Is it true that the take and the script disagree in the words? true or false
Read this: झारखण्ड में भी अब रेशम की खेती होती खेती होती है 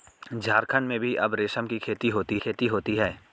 false